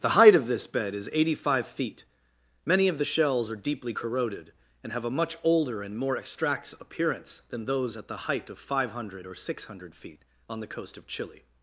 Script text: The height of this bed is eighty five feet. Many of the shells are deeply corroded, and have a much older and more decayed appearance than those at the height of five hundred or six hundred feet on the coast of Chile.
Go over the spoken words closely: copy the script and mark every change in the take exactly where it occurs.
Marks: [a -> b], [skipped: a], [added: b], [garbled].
The height of this bed is eighty five feet. Many of the shells are deeply corroded, and have a much older and more [decayed -> extracts] appearance than those at the height of five hundred or six hundred feet on the coast of Chile.